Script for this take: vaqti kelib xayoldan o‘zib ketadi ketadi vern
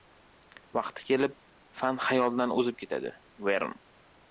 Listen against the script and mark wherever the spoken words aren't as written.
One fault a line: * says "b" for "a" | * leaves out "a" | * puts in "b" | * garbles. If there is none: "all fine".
* puts in "fan"
* leaves out "ketadi"